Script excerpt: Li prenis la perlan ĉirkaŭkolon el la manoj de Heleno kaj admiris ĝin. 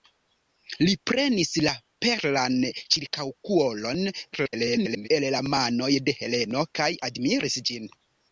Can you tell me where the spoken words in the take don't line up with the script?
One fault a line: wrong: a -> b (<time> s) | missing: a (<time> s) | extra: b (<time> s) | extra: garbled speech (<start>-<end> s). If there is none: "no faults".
extra: garbled speech (4.3-5.1 s)